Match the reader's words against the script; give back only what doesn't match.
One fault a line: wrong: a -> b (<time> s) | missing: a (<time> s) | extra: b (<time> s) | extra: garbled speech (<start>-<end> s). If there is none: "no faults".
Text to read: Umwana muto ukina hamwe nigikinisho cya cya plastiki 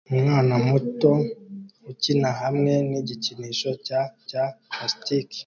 no faults